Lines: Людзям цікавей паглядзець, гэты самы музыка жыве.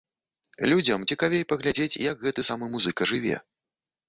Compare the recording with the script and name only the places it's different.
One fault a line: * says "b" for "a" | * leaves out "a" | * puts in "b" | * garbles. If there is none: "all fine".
* puts in "як"